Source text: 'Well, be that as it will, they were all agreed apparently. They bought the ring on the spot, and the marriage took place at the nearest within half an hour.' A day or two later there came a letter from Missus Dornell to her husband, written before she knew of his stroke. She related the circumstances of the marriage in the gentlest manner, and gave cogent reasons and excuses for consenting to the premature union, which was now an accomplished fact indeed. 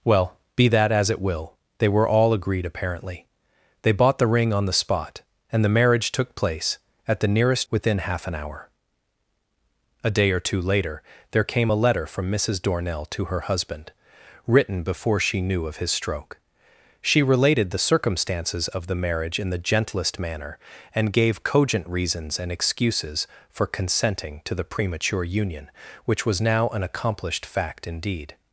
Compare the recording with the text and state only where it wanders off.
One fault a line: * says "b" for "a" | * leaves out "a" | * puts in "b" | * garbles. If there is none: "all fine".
all fine